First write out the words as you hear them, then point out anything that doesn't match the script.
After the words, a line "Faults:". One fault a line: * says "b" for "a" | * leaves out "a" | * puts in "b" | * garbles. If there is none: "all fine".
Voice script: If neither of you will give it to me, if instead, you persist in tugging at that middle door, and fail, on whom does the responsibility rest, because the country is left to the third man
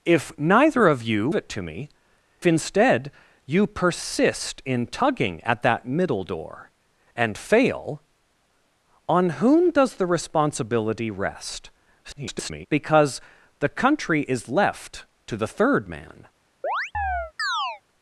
If neither of you it to me, instead, you persist in tugging at that middle door, and fail, on whom does the responsibility rest, [garbled] because the country is left to the third man
Faults:
* leaves out "will give"
* leaves out "if"
* garbles